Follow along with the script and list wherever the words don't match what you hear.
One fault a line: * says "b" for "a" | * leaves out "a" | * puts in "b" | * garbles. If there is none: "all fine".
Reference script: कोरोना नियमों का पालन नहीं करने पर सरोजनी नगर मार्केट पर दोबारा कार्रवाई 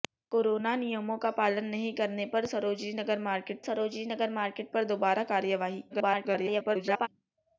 * puts in "सरोजनी नगर मार्केट"
* garbles